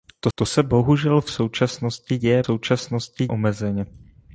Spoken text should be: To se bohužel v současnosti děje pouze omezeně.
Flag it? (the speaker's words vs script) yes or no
yes